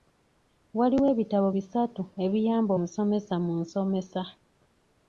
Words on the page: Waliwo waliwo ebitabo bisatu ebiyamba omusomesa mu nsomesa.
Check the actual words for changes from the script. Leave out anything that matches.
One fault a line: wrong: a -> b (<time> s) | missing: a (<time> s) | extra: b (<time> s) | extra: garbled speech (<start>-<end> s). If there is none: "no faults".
missing: waliwo (1.1 s)